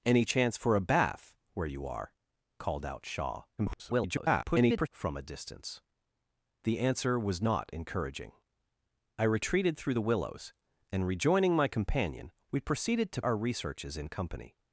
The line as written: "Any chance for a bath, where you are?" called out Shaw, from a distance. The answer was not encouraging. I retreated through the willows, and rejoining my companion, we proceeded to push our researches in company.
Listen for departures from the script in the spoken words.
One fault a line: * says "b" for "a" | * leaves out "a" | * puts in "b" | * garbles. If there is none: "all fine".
* garbles
* leaves out "push"